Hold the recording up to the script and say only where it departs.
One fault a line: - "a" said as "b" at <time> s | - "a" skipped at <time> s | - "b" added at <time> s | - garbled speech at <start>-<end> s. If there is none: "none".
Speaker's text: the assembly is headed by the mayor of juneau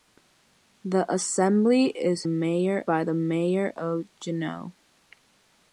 - "headed" said as "mayor" at 2.2 s